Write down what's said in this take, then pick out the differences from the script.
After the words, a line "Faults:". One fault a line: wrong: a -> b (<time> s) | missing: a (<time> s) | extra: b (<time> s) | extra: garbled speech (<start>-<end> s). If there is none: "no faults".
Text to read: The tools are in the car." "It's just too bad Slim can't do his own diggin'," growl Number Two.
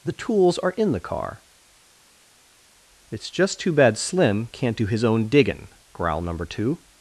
The tools are in the car." "It's just too bad Slim can't do his own diggin'," growl Number Two.
Faults:
no faults